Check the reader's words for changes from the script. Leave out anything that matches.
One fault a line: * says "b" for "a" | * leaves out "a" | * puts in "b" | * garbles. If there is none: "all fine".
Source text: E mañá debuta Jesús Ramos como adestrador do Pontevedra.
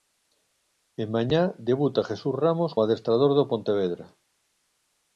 * leaves out "como"